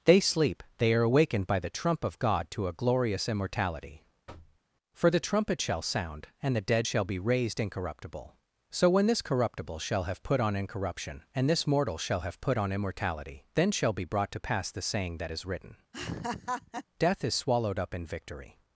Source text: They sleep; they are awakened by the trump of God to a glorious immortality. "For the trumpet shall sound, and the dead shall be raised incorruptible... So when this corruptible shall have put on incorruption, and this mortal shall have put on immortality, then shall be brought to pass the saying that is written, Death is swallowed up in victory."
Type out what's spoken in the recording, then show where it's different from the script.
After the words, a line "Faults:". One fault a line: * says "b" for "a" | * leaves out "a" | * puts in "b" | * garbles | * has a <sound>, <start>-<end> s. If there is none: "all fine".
They sleep; they are awakened by the trump of God to a glorious immortality. "For the trumpet shall sound, and the dead shall be raised incorruptible... So when this corruptible shall have put on incorruption, and this mortal shall have put on immortality, then shall be brought to pass the saying that is written, Death is swallowed up in victory."
Faults:
* has a thud, 4.3-4.6 s
* has a laugh, 15.9-16.8 s